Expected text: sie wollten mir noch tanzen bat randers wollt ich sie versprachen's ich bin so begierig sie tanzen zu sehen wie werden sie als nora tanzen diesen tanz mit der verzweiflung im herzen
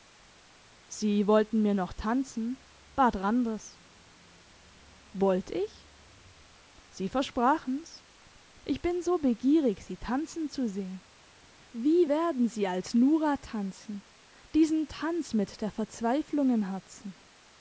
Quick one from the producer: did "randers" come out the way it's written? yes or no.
yes